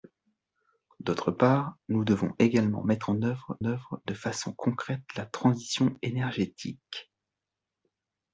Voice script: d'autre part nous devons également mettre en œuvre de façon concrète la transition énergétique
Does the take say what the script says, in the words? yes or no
no